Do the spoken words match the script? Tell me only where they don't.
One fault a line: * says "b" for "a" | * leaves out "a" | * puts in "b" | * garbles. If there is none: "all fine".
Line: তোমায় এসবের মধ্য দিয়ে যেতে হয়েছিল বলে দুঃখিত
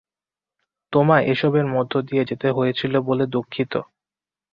all fine